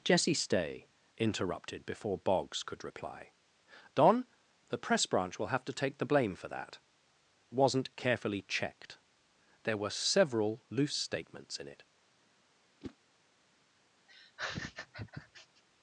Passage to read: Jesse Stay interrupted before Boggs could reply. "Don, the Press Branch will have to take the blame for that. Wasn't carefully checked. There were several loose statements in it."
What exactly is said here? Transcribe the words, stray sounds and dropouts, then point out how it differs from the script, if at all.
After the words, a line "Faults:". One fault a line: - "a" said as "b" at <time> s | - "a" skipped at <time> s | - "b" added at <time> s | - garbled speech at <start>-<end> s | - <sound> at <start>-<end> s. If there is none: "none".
Jesse Stay interrupted before Boggs could reply. "Don, the Press Branch will have to take the blame for that. Wasn't carefully checked. There were several loose statements in it."
Faults:
- whoosh at 12.8-13.0 s
- laugh at 14.1-15.6 s